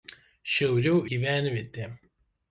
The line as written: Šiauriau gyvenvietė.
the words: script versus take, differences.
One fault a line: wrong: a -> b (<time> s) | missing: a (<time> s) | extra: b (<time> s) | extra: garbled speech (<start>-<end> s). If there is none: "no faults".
no faults